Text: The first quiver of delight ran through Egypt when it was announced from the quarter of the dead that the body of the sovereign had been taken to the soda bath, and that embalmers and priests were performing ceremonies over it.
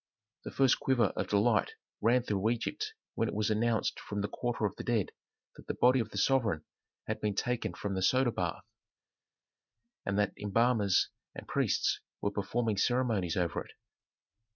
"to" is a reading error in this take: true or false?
true